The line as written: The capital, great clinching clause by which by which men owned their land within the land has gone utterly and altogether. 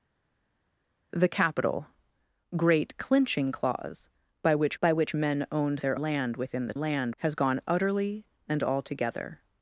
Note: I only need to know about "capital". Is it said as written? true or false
true